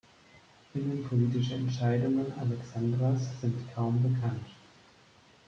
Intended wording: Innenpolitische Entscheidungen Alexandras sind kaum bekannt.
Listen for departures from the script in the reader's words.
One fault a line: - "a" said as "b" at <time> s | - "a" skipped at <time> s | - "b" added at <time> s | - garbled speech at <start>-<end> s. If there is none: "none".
none